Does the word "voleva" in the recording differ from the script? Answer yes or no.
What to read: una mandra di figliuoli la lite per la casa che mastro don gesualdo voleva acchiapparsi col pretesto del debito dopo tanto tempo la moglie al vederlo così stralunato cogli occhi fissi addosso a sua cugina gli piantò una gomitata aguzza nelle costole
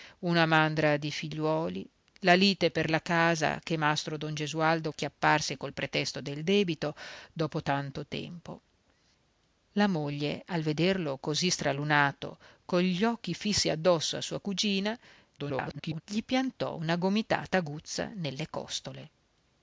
yes